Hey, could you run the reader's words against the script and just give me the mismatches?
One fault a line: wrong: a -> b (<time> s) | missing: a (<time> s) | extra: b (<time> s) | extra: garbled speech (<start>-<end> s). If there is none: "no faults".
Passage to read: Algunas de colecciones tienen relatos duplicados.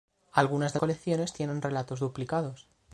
no faults